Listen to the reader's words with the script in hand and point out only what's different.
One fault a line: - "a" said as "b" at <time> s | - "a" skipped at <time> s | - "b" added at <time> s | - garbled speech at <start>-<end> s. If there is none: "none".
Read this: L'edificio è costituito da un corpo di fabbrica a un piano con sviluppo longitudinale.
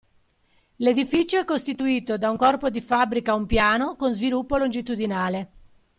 none